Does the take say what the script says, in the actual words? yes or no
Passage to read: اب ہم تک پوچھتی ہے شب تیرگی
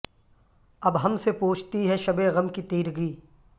no